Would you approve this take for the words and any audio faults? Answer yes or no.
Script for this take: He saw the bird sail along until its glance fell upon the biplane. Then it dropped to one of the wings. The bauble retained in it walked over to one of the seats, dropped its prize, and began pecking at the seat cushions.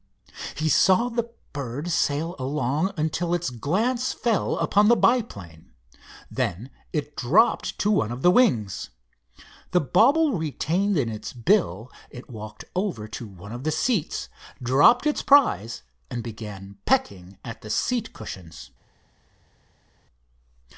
no